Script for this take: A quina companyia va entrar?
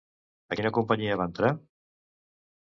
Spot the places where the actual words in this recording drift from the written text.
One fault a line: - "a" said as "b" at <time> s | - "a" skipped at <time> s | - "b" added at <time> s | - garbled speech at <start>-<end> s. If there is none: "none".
none